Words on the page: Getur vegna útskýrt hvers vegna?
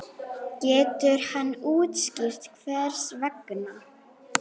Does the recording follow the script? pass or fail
fail